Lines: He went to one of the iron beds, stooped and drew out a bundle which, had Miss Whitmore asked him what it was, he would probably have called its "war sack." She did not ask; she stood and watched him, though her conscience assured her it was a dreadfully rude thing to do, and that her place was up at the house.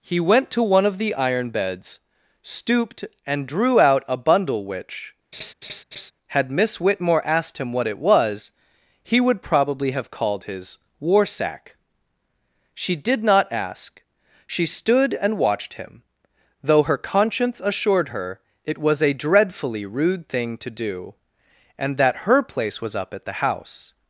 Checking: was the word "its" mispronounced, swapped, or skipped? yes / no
yes